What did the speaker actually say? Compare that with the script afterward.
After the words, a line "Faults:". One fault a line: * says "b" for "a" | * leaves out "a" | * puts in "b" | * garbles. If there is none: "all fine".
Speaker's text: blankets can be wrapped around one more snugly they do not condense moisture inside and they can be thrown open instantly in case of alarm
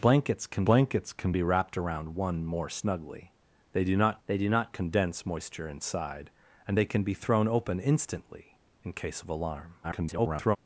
blankets can blankets can be wrapped around one more snugly they do not they do not condense moisture inside and they can be thrown open instantly in case of alarm [garbled]
Faults:
* puts in "blankets can"
* puts in "they do not"
* garbles